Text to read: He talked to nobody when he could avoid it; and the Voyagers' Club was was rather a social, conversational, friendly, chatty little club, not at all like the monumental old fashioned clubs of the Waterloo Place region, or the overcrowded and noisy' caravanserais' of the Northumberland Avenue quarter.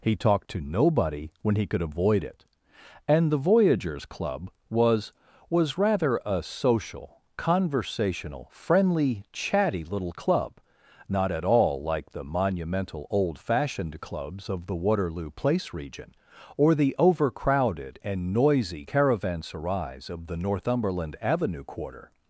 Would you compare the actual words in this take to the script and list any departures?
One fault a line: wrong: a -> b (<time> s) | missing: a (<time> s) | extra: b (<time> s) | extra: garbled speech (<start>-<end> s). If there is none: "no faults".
no faults